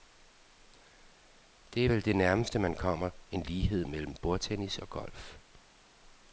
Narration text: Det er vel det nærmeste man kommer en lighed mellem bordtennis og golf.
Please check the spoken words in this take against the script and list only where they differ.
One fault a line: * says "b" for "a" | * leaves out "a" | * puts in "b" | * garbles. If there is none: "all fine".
all fine